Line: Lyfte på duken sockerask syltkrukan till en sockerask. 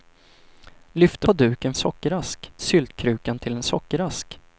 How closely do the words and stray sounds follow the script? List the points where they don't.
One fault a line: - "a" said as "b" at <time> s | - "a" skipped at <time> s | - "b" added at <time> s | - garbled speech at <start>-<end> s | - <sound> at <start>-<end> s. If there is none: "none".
none